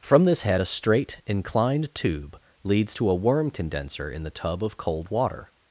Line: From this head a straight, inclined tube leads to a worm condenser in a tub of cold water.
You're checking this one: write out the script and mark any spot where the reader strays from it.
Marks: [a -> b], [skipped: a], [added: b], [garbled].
From this head a straight, inclined tube leads to a worm condenser in [a -> the] tub of cold water.